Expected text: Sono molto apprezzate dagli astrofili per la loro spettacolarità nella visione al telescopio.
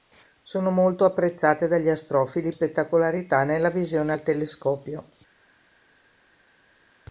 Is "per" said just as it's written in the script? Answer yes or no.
no